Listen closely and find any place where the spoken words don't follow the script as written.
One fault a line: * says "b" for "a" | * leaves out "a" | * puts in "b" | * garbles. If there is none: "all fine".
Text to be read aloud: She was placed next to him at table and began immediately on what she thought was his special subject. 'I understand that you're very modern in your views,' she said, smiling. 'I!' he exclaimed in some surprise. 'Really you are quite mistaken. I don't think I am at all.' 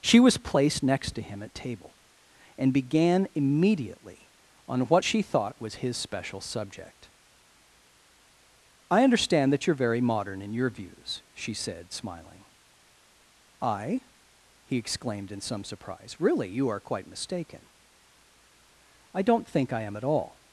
all fine